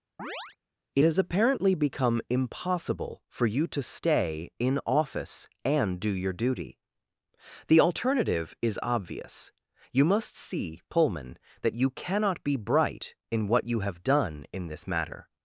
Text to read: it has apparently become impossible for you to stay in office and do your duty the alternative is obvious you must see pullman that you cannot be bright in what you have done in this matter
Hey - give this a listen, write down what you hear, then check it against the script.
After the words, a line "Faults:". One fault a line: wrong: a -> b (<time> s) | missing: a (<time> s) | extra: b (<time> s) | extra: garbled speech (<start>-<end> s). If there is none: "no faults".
it has apparently become impossible for you to stay in office and do your duty the alternative is obvious you must see pullman that you cannot be bright in what you have done in this matter
Faults:
no faults